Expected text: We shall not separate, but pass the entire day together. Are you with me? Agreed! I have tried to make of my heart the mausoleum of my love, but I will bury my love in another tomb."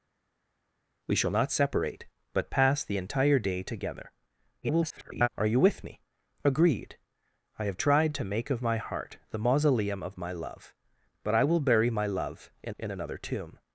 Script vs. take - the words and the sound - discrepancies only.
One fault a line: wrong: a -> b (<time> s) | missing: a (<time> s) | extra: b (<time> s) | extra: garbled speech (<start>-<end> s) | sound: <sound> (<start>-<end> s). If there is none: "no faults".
extra: garbled speech (4.6-5.3 s)
extra: in (12.8 s)